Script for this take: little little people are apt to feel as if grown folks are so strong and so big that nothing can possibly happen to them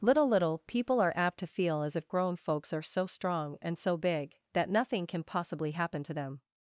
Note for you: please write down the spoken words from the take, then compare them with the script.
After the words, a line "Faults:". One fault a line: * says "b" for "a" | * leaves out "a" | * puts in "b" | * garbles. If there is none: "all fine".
little little people are apt to feel as if grown folks are so strong and so big that nothing can possibly happen to them
Faults:
all fine